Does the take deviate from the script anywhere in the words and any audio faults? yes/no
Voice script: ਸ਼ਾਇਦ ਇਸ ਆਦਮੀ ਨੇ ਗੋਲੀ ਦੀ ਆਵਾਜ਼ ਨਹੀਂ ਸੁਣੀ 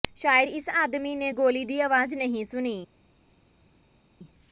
no